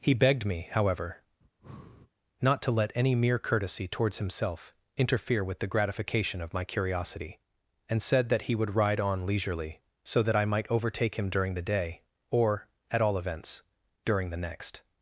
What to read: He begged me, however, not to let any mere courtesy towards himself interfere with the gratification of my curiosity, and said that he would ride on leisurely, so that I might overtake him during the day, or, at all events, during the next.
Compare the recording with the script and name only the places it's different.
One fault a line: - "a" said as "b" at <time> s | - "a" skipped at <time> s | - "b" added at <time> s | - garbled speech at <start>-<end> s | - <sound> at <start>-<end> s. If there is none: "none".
- breath at 1.4-2.1 s